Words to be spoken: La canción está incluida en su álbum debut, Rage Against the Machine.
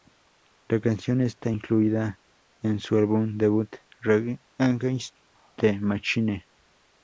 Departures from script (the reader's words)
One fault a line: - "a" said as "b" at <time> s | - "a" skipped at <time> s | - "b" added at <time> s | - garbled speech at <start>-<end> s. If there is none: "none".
none